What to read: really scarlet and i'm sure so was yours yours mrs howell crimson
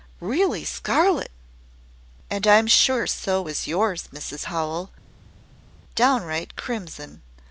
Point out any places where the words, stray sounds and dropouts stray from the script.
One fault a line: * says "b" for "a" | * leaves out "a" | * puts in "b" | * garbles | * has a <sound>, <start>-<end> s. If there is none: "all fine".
* leaves out "yours"
* puts in "downright"